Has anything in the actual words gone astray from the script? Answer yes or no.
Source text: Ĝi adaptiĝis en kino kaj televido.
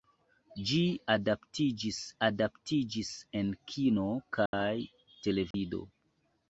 yes